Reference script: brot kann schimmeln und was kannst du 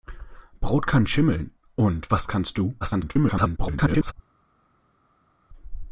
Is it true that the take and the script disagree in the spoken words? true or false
true